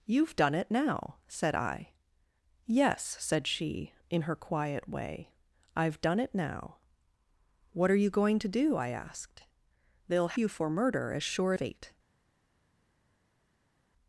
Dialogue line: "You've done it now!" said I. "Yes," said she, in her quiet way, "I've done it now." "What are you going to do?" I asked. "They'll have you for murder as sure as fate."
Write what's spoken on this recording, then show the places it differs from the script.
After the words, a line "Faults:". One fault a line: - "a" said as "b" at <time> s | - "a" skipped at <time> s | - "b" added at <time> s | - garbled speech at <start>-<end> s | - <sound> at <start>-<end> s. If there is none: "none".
"You've done it now!" said I. "Yes," said she, in her quiet way, "I've done it now." "What are you going to do?" I asked. "They'll you for murder as sure fate."
Faults:
- "have" skipped at 10.4 s
- "as" skipped at 11.5 s